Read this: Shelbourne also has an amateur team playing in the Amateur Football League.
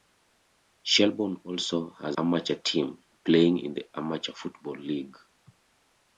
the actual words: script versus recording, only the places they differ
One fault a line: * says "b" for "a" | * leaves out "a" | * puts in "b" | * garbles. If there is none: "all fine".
* leaves out "an"